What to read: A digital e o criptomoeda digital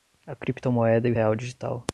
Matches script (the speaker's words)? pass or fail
fail